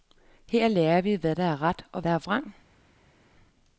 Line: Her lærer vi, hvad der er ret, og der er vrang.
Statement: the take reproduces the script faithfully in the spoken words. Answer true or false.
true